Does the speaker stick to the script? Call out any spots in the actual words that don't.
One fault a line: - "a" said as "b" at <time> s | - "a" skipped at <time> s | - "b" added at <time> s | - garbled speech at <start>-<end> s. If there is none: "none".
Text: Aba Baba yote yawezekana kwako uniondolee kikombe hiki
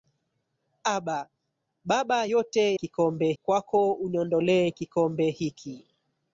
- "yawezekana" said as "kikombe" at 2.7 s